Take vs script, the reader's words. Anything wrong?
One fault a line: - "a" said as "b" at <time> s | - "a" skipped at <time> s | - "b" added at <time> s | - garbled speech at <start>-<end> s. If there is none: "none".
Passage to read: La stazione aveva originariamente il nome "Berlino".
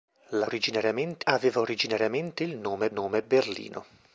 - "stazione" said as "originariamente" at 0.4 s
- "nome" added at 2.9 s